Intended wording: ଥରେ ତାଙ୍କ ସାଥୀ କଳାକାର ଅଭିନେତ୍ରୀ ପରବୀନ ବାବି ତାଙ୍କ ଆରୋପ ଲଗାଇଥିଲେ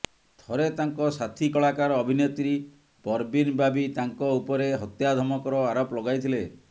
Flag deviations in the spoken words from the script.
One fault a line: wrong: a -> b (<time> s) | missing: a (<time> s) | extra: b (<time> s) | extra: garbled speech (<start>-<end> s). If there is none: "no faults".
extra: ଉପରେ ହତ୍ୟା ଧମକର (4.4 s)